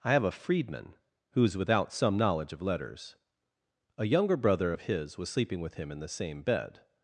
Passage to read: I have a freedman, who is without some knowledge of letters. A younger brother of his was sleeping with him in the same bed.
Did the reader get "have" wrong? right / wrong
right